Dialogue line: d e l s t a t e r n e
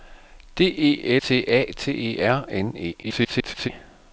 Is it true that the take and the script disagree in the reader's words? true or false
true